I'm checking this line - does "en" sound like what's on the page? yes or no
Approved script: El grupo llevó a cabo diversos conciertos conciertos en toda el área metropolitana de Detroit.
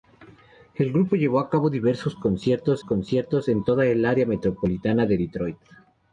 yes